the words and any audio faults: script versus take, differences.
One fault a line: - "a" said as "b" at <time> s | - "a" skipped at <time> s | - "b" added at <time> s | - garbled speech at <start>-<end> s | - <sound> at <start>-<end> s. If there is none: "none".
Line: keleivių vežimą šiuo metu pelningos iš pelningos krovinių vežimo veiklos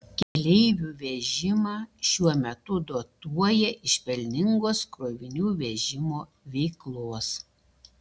- dropout at 0.2-0.4 s
- "pelningos" said as "dotuoja" at 2.9 s